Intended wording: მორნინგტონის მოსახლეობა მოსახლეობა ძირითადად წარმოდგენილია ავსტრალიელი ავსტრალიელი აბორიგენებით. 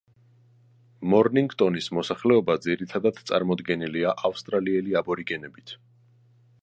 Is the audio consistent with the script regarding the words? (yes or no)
no